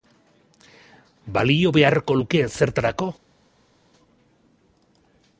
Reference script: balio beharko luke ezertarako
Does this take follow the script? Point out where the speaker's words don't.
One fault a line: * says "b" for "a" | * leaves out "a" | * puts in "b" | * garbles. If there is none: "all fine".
all fine